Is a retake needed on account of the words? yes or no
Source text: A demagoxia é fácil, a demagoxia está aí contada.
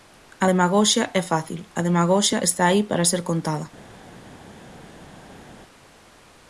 yes